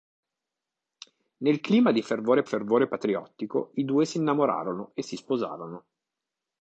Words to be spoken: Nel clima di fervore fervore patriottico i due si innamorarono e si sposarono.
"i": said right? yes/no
yes